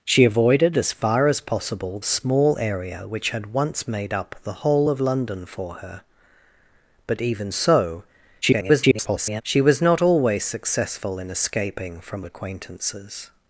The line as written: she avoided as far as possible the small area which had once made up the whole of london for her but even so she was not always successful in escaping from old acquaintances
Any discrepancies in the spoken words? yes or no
yes